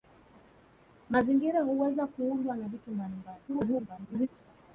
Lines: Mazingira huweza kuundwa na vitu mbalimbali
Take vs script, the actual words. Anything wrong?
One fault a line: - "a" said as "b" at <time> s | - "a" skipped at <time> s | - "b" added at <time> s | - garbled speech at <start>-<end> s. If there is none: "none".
- garbled speech at 3.5-4.3 s